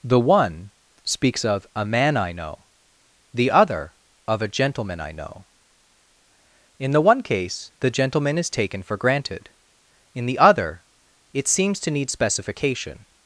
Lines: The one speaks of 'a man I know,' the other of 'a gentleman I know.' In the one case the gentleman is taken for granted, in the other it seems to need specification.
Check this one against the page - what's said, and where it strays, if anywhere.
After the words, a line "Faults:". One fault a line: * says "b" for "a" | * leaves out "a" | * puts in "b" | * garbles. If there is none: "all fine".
The one speaks of 'a man I know,' the other of 'a gentleman I know.' In the one case the gentleman is taken for granted, in the other it seems to need specification.
Faults:
all fine